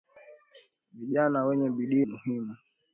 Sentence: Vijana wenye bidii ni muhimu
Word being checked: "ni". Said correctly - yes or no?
no